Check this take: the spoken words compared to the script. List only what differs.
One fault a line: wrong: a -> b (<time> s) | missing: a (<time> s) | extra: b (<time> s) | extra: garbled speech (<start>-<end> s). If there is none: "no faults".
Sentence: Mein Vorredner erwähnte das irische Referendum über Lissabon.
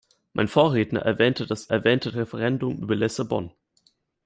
wrong: irische -> erwähnte (1.7 s)